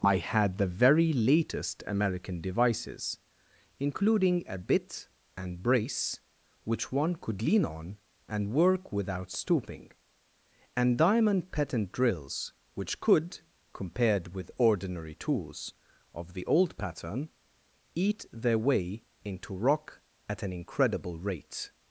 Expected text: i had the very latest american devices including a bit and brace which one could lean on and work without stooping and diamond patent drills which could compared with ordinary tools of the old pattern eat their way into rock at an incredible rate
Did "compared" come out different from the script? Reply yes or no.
no